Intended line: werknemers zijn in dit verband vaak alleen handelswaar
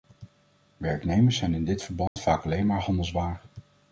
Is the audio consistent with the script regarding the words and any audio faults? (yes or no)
no